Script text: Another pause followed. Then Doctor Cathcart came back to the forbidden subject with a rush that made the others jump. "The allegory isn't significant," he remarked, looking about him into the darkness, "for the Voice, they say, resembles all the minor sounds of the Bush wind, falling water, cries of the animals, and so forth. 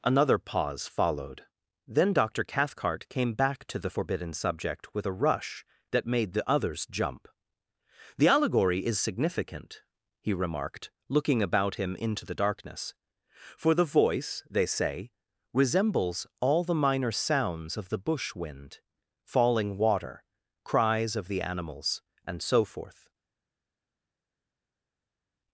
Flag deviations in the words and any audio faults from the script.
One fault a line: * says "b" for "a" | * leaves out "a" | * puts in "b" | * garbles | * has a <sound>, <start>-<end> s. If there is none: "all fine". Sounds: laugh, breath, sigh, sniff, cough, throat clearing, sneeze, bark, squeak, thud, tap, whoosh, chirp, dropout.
* says "is" for "isn't"